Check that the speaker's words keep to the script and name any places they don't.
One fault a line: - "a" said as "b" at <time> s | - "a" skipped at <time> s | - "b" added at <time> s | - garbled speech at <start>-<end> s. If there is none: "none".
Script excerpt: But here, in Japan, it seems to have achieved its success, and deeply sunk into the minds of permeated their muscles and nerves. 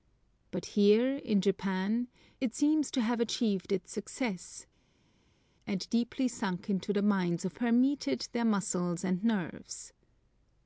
none